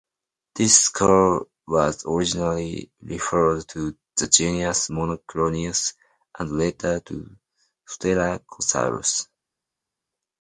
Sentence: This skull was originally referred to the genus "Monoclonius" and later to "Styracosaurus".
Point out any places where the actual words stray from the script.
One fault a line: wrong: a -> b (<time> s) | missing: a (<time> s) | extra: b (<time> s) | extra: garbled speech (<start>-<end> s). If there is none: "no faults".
no faults